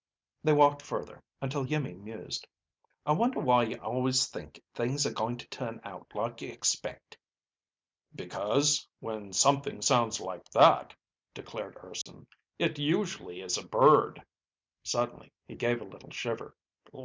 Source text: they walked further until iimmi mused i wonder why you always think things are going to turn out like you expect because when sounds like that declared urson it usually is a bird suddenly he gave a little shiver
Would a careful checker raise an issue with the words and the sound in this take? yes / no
yes